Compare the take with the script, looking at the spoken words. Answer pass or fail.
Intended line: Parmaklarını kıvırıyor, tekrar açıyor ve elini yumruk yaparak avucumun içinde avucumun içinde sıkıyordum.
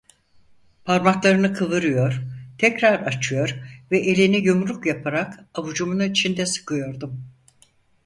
fail